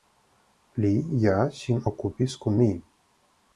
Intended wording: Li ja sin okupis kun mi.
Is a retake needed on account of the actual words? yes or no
no